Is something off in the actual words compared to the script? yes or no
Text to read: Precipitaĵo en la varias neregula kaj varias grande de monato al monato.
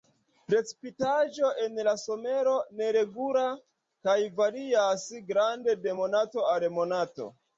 yes